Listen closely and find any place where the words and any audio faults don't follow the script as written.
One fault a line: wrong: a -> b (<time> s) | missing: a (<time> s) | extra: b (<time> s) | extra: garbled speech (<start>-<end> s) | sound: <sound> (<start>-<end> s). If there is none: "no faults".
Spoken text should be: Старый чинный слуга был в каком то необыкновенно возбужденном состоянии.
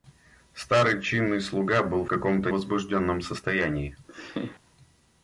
missing: в (2.0 s)
missing: необыкновенно (2.5 s)
sound: laugh (4.1-4.6 s)